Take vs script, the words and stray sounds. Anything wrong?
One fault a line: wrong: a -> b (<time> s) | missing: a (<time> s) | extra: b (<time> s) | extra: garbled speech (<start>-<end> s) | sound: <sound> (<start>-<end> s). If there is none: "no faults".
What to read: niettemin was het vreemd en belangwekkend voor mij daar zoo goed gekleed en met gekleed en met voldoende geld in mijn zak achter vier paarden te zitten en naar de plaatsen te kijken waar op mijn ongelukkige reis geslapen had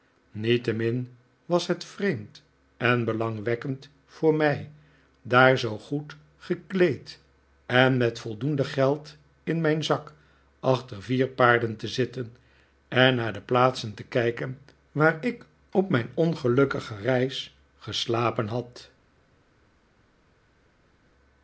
missing: gekleed en met (8.2 s)
extra: ik (15.2 s)